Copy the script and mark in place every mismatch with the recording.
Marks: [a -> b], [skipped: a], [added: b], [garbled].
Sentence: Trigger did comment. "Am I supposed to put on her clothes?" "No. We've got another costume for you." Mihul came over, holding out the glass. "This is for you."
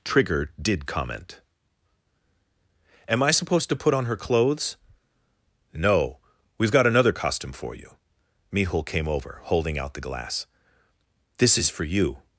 Trigger did comment. "Am I supposed to put on her clothes?" "No. We've got another costume for you." Mihul came over, holding out the glass. "This is for you."